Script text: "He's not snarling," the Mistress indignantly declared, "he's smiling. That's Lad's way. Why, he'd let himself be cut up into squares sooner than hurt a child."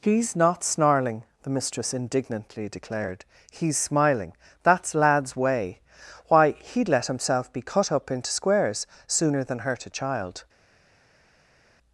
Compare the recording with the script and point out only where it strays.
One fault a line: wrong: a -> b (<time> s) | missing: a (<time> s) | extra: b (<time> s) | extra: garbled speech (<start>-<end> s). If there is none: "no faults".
no faults